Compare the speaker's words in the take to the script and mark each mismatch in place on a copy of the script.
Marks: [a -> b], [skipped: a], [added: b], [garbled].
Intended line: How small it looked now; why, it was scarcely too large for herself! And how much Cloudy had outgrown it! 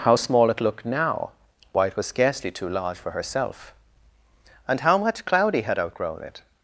How small it looked now; why, it was scarcely too large for herself! And how much Cloudy had outgrown it!